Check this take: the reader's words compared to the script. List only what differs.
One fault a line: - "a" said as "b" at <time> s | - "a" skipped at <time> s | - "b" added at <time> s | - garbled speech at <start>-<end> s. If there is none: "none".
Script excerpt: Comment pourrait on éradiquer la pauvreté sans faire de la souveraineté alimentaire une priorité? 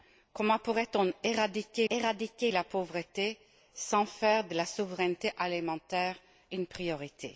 - "éradiquer" added at 1.9 s